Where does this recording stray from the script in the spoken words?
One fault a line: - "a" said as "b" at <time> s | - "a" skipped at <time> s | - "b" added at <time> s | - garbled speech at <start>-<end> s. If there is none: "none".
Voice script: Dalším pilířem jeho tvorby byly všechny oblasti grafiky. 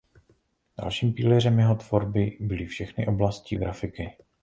none